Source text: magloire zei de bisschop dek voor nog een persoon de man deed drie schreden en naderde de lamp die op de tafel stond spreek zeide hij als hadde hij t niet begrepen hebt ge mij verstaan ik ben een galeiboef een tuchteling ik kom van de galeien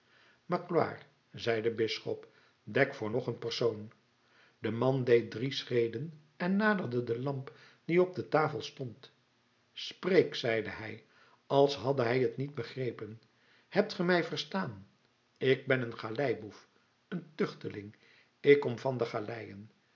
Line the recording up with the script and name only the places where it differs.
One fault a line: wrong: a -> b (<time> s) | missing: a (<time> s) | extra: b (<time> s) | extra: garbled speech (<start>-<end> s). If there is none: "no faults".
no faults